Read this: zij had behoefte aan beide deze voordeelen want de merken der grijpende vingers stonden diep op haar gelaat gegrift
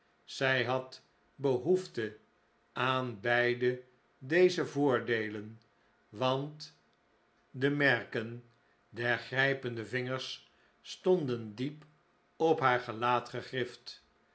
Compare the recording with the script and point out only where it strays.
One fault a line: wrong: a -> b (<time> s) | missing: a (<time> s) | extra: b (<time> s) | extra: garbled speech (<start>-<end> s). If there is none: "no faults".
no faults